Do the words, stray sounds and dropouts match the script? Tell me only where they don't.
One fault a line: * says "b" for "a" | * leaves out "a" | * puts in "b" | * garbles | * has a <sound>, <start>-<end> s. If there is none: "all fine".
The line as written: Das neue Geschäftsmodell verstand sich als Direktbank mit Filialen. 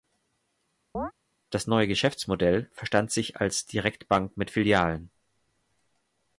* has a chirp, 0.9-1.1 s